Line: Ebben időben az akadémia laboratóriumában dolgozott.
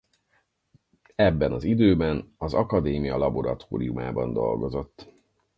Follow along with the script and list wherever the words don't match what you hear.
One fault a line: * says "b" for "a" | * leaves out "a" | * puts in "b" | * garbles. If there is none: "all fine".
* puts in "az"